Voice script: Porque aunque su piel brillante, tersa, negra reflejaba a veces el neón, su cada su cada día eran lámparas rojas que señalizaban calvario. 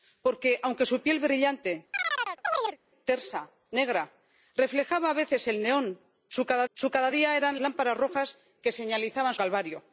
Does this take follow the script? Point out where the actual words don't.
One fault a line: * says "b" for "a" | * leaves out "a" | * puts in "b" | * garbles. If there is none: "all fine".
all fine